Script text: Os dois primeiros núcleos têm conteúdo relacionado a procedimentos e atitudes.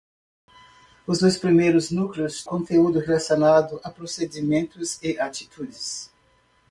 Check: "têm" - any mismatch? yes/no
yes